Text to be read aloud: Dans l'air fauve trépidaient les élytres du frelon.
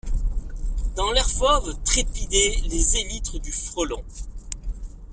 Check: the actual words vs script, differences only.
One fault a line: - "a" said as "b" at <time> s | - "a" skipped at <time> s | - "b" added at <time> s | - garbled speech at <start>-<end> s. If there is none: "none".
none